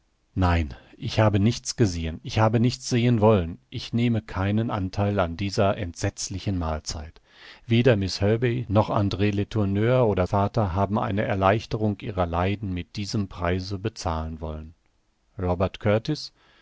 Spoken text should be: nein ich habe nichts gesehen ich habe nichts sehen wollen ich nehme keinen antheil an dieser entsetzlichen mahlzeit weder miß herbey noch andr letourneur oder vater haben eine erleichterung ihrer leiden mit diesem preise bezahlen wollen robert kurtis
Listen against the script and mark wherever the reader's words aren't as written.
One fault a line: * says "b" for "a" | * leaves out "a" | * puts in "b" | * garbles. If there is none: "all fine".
all fine